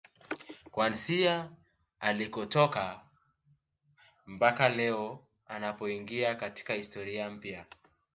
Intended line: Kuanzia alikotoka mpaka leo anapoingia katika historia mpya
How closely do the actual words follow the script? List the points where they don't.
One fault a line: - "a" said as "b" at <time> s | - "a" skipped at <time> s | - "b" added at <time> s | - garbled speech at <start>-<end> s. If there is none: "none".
none